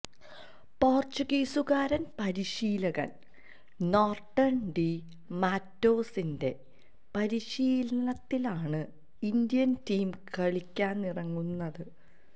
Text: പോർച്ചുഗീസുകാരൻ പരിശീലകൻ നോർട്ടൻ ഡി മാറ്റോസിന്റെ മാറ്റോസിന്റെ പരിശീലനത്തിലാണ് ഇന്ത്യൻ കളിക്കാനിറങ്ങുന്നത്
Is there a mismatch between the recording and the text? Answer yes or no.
yes